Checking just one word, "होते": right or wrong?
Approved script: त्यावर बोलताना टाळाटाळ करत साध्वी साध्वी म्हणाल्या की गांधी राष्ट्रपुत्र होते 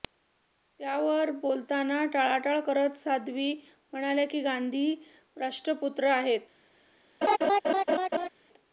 wrong